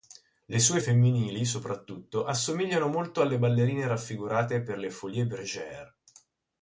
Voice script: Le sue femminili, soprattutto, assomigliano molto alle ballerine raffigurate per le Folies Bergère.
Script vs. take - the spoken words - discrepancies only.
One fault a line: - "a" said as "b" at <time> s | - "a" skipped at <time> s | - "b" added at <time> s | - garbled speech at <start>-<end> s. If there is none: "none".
none